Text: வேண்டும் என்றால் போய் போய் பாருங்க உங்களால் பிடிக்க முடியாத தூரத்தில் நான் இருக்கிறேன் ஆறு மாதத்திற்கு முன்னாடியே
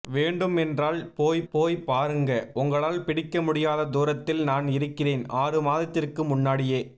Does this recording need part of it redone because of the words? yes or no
no